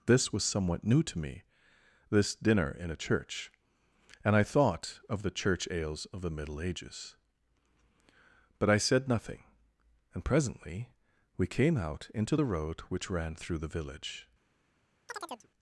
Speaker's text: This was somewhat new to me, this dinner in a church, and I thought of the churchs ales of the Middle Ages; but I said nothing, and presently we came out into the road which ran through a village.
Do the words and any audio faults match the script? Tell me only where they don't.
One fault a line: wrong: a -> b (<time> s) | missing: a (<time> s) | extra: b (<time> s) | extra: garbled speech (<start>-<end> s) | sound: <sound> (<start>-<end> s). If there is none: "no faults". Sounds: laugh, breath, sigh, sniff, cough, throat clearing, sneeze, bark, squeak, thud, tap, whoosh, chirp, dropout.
wrong: churchs -> church (5.3 s)
wrong: a -> the (13.6 s)
sound: chirp (15.1-15.5 s)